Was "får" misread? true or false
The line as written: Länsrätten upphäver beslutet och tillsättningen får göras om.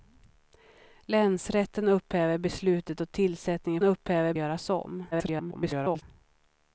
true